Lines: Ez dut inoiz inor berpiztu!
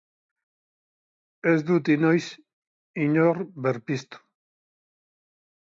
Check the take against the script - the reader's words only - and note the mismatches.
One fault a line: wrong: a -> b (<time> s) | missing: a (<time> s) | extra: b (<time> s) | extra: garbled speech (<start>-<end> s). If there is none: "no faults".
no faults